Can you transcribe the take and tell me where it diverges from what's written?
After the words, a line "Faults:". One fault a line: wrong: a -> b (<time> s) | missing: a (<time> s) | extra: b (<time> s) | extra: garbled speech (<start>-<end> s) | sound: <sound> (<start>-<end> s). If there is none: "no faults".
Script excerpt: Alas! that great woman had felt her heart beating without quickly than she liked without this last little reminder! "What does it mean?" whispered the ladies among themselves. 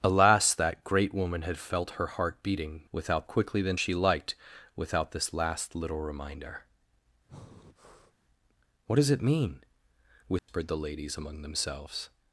Alas! that great woman had felt her heart beating without quickly than she liked without this last little reminder! "What does it mean?" whispered the ladies among themselves.
Faults:
sound: breath (7.3-8.2 s)
sound: dropout (10.4-10.5 s)